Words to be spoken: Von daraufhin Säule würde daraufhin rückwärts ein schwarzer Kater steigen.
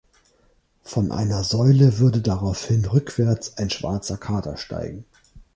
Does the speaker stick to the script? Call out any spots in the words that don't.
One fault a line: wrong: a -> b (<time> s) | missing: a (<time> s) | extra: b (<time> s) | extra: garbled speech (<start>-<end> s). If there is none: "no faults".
wrong: daraufhin -> einer (1.1 s)